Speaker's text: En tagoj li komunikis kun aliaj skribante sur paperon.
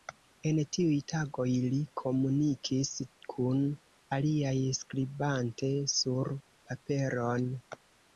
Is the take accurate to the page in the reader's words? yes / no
no